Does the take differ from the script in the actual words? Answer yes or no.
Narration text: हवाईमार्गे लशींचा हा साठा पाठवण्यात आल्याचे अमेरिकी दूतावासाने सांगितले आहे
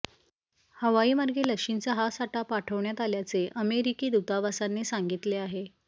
no